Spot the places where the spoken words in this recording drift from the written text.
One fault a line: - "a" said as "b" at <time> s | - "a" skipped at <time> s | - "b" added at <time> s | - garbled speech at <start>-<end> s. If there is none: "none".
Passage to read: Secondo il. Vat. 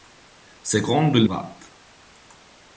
none